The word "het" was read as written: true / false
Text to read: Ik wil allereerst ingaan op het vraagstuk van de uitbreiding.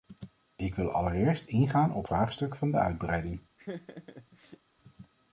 false